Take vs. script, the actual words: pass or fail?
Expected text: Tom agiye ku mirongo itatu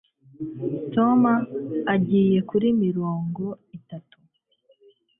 fail